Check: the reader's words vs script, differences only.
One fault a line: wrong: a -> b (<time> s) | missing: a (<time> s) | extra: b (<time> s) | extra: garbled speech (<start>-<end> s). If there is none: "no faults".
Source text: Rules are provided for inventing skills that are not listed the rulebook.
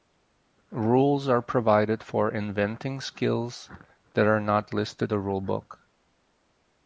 no faults